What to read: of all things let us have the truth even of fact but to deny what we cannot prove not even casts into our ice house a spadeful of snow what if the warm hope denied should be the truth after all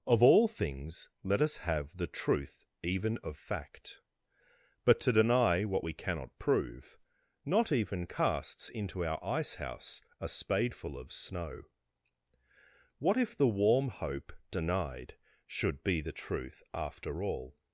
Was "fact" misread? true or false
false